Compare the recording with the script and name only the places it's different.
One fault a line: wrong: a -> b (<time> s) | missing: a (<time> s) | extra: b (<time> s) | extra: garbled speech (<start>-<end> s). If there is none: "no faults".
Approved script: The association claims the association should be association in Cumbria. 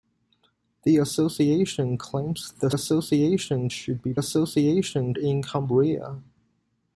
no faults